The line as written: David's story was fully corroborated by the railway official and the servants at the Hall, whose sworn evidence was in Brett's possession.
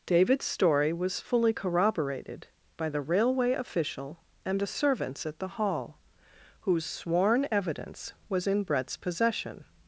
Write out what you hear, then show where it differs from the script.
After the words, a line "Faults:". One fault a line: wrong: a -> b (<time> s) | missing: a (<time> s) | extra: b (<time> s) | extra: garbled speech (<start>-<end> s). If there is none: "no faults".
David's story was fully corroborated by the railway official and the servants at the Hall, whose sworn evidence was in Brett's possession.
Faults:
no faults